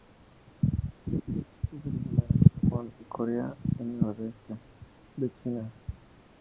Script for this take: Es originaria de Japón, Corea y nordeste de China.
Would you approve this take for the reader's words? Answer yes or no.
yes